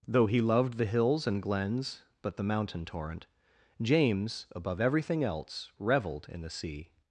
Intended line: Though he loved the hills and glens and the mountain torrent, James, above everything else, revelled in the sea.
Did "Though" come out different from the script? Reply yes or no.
no